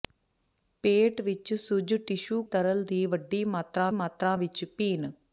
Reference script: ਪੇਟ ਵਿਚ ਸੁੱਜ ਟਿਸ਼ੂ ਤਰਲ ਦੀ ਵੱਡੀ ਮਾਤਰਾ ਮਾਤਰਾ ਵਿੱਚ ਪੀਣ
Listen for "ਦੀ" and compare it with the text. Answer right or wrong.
right